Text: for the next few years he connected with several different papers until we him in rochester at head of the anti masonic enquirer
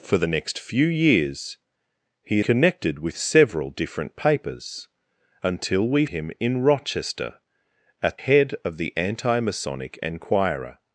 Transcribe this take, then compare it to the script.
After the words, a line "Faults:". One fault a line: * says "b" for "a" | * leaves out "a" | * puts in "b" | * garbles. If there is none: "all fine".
for the next few years he connected with several different papers until we him in rochester at head of the anti masonic enquirer
Faults:
all fine